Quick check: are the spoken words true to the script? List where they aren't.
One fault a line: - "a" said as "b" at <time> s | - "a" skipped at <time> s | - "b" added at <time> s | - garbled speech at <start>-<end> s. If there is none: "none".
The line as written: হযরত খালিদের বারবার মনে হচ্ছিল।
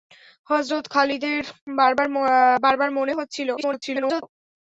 - garbled speech at 3.6-4.2 s